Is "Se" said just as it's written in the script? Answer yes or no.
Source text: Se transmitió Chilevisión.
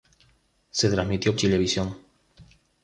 yes